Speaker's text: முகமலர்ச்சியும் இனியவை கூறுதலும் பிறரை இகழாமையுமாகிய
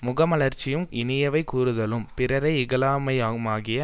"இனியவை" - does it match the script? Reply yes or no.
yes